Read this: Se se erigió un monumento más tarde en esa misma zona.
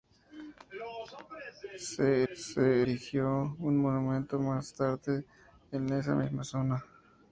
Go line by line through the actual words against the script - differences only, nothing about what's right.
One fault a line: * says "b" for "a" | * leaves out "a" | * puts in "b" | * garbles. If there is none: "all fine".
all fine